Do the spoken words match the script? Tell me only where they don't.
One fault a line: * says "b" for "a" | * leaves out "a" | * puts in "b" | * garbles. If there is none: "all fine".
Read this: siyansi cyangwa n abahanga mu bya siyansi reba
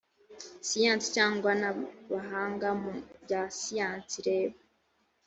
all fine